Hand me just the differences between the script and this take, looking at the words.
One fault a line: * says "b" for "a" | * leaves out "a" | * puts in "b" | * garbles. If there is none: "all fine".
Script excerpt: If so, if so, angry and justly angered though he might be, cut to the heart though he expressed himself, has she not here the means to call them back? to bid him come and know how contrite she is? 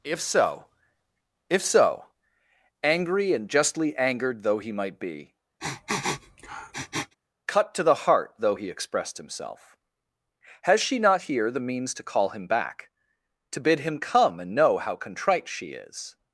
* says "him" for "them"